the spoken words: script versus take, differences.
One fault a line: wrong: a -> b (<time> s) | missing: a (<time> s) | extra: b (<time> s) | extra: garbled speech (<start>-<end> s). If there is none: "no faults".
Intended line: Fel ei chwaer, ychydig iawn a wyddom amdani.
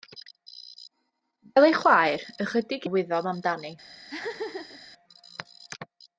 missing: iawn (2.9 s)